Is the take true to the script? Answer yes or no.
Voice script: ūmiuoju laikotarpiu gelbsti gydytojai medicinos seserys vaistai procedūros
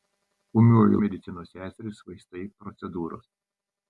no